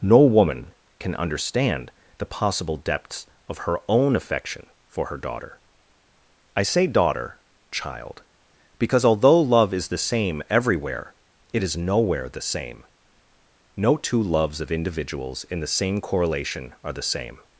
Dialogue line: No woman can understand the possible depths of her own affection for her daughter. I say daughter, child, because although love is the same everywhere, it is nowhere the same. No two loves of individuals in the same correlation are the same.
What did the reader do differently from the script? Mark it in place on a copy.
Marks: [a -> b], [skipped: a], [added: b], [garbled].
No woman can understand the possible depths of her own affection for her daughter. I say daughter, child, because although love is the same everywhere, it is nowhere the same. No two loves of individuals in the same correlation are the same.